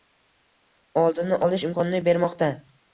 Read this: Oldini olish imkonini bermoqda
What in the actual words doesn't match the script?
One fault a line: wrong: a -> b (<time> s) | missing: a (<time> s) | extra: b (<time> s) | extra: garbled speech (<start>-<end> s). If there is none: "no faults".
no faults